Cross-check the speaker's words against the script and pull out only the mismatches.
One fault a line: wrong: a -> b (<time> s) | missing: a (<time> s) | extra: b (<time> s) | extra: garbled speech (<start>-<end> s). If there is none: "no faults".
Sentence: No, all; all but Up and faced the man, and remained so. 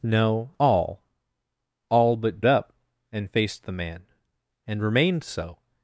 no faults